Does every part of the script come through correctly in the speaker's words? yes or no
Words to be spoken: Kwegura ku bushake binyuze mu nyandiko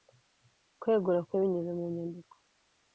no